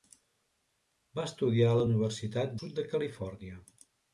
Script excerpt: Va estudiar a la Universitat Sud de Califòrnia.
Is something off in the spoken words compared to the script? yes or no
no